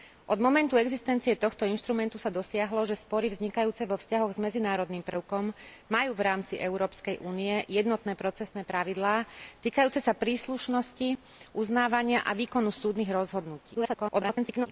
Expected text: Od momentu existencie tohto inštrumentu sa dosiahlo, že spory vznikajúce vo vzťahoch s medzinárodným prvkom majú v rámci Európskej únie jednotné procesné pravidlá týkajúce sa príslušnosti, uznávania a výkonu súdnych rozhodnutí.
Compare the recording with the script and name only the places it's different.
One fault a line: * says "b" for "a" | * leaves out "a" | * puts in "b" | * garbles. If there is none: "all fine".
* garbles